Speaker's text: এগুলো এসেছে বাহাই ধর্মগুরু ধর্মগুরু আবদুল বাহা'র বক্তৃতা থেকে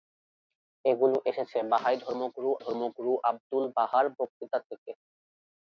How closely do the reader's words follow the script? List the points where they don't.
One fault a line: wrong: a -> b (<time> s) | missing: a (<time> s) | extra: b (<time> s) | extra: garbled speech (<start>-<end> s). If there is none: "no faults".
no faults